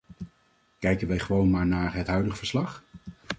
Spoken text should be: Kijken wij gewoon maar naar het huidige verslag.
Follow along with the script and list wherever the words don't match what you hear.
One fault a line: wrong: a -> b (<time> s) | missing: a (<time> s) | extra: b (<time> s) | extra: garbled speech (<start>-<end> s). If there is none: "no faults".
no faults